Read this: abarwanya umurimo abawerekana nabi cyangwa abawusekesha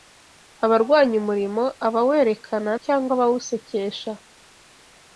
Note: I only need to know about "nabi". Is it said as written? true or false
false